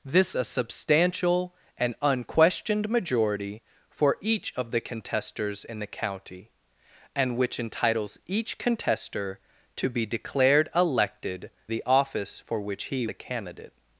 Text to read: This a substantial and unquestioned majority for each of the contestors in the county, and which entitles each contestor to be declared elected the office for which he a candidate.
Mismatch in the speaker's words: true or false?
false